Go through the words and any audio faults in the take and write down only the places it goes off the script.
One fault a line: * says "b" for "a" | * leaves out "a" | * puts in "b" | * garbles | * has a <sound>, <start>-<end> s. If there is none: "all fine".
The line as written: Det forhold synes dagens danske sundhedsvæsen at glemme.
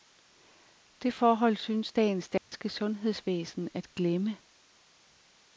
* has a dropout, 2.4-2.5 s